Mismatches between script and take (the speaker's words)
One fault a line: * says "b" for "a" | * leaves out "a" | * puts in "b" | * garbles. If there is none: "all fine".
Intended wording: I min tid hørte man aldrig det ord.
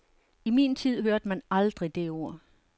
all fine